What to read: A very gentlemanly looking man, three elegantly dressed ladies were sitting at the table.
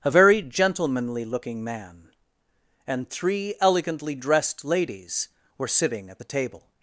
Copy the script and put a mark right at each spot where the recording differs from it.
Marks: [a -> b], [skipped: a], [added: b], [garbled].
A very gentlemanly looking man, [added: and] three elegantly dressed ladies were sitting at the table.